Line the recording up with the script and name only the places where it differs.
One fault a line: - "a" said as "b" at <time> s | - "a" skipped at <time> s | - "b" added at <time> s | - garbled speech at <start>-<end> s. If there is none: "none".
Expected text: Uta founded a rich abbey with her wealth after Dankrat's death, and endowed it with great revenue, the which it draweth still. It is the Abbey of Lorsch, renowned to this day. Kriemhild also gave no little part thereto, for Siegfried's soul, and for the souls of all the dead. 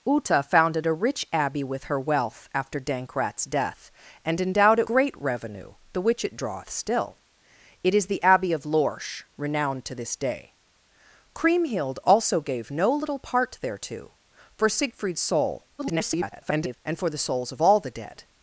- "with" skipped at 4.9 s
- garbled speech at 15.8-16.8 s